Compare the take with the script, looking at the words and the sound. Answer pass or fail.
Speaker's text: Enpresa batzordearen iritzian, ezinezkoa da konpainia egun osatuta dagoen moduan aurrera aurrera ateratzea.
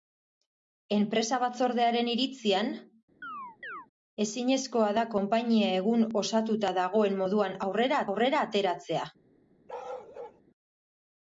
fail